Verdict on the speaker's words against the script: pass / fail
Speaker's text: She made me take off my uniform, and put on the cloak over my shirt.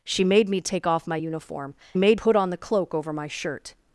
fail